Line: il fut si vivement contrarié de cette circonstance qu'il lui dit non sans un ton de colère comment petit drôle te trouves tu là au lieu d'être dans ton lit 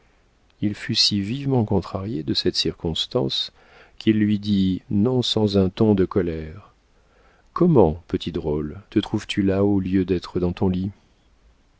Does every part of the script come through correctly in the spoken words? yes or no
yes